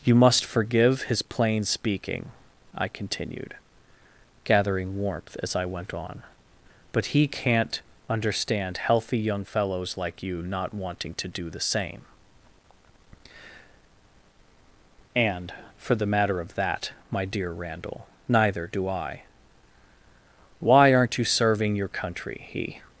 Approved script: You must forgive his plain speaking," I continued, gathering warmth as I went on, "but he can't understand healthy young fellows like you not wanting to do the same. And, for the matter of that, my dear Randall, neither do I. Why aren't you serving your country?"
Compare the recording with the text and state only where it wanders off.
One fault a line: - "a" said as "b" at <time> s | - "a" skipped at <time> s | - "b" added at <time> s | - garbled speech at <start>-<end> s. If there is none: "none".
- "He" added at 22.5 s